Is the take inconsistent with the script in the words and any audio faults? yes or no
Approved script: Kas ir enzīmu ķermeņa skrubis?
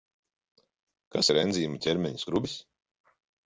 no